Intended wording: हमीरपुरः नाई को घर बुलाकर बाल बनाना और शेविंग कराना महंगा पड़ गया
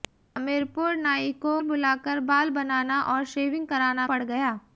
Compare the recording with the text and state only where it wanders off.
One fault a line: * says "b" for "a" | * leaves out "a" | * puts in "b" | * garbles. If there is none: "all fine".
* leaves out "घर"
* leaves out "महंगा"